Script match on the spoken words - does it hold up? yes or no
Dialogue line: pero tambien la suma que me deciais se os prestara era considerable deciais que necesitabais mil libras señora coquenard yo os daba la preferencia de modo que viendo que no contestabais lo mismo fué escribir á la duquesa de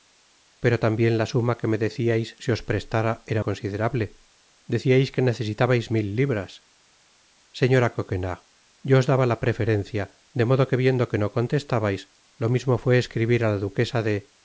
yes